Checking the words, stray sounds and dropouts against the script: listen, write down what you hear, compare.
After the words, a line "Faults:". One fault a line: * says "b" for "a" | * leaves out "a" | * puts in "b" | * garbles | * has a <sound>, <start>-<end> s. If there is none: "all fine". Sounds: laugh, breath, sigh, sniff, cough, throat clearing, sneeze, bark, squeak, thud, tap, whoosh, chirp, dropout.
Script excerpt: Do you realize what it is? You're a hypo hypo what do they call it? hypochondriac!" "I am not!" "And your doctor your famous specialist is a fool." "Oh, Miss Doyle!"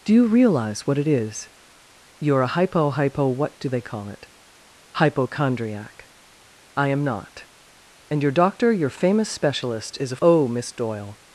Do you realize what it is? You're a hypo hypo what do they call it? hypochondriac!" "I am not!" "And your doctor your famous specialist is a." "Oh, Miss Doyle!"
Faults:
* leaves out "fool"